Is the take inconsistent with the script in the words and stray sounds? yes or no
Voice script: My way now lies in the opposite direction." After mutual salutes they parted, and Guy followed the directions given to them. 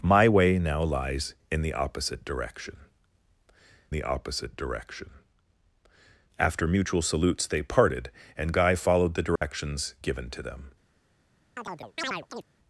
yes